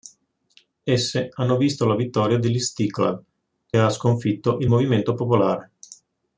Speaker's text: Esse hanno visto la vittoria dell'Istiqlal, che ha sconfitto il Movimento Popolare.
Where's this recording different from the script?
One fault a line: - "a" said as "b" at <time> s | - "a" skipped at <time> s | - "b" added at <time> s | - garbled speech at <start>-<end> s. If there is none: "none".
- "che" skipped at 3.2 s